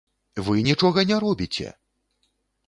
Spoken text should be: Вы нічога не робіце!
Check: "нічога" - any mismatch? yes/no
no